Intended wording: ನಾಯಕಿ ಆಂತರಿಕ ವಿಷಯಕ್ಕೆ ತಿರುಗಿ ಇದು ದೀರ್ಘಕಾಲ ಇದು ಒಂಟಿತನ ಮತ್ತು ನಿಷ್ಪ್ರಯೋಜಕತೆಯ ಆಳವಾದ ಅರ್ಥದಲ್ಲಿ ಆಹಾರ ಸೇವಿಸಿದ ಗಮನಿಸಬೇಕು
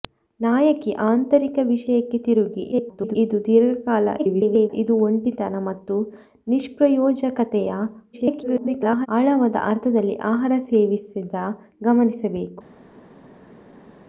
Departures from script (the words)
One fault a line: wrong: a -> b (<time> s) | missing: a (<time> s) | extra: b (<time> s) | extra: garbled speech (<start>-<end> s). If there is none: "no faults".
extra: garbled speech (2.7-3.2 s)
extra: garbled speech (4.2-4.7 s)
extra: garbled speech (8.1-9.1 s)